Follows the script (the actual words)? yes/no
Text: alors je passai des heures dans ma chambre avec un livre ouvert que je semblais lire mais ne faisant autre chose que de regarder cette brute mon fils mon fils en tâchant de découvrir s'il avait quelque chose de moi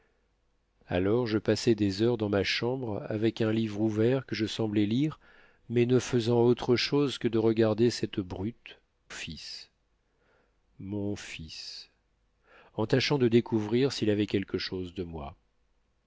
no